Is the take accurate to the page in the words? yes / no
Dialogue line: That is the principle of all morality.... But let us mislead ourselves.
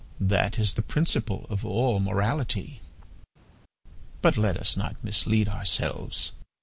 no